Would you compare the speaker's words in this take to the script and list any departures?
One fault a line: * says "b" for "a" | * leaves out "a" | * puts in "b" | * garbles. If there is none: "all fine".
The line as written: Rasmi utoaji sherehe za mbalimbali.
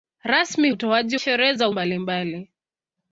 all fine